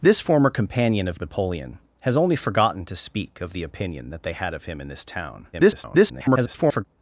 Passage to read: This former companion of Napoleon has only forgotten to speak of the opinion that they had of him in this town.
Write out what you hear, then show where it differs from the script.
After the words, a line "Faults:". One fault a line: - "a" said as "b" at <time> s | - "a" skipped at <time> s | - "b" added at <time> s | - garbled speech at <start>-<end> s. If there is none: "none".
This former companion of Napoleon has only forgotten to speak of the opinion that they had of him in this town. [garbled]
Faults:
- garbled speech at 5.5-6.9 s